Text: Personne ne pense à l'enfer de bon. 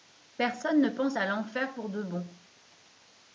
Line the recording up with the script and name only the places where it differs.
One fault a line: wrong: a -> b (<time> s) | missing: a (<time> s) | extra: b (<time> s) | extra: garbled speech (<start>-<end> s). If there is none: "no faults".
extra: pour (1.7 s)